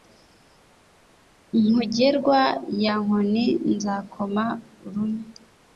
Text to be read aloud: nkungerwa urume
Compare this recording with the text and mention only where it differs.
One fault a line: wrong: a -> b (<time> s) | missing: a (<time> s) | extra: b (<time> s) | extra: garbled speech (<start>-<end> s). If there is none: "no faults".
extra: ya nkoni nzakoma (2.8 s)